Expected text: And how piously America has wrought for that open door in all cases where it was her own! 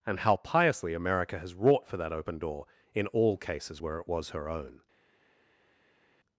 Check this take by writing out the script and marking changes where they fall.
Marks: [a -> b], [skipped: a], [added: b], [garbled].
And how piously America has wrought for that open door in all cases where it was her own!